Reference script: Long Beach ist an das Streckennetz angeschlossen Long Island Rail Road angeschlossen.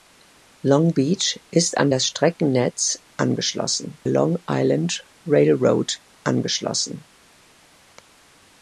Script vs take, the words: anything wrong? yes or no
no